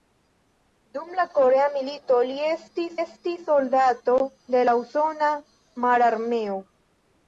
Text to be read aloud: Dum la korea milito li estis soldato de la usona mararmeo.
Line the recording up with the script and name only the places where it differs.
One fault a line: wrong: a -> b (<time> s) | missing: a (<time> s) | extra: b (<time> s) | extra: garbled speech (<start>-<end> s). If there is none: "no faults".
extra: estis (3.0 s)